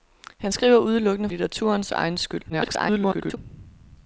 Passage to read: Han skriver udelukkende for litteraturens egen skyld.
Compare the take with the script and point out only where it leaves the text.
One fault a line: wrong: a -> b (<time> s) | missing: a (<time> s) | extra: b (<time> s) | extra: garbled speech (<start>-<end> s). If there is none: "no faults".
missing: for (1.3 s)
extra: garbled speech (2.5-3.4 s)